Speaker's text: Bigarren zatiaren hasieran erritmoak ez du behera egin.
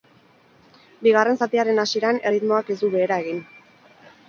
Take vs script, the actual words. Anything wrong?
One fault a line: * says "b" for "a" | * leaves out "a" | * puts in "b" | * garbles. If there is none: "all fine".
all fine